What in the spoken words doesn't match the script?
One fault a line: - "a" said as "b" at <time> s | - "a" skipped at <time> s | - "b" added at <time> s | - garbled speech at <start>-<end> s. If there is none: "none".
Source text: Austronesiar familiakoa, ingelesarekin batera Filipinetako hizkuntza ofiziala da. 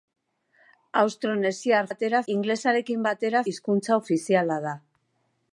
- "familiakoa" said as "batera" at 1.9 s
- "Filipinetako" skipped at 3.4 s